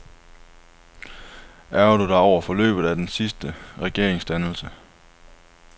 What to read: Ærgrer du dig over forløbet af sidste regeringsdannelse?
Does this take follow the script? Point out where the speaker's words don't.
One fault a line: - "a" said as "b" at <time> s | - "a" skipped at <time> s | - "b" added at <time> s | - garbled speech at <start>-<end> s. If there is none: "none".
- "den" added at 3.0 s